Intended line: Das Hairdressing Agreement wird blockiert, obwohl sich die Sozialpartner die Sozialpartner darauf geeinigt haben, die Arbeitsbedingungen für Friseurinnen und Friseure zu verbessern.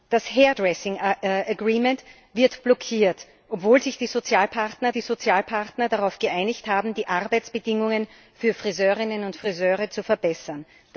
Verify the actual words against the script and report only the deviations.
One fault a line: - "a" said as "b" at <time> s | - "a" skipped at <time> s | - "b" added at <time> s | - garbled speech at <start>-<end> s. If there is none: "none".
none